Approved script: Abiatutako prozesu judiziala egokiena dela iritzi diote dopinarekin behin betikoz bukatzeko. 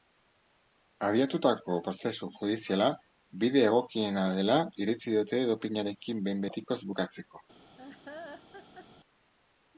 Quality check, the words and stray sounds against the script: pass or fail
fail